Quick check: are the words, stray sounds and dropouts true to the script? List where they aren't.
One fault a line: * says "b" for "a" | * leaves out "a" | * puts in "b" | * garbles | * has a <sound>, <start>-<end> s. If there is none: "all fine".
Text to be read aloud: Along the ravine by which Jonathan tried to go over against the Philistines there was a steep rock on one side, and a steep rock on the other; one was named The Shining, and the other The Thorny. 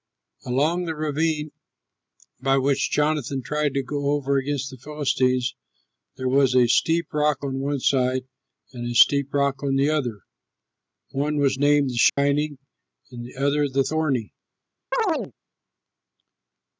* has a dropout, 12.1-12.2 s
* has a chirp, 14.9-15.3 s